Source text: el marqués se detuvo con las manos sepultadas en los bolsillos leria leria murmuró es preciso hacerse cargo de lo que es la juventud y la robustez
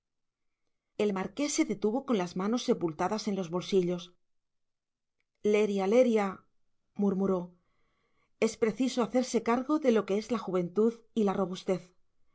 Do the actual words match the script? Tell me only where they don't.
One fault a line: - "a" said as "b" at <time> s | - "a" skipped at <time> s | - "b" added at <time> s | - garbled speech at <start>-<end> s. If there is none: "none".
none